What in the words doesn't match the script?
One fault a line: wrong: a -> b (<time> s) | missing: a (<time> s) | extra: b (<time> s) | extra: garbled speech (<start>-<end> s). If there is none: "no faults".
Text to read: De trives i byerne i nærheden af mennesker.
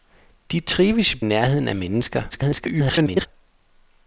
missing: byerne (1.2 s)
extra: garbled speech (2.3-3.3 s)